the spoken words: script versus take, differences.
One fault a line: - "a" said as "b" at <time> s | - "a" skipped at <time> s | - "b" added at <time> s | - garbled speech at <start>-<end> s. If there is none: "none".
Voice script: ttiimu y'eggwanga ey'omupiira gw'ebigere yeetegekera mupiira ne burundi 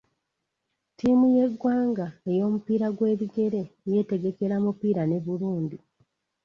none